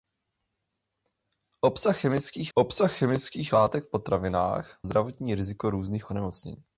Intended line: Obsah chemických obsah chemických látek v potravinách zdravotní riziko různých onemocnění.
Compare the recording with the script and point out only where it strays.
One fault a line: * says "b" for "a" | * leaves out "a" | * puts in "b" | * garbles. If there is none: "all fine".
all fine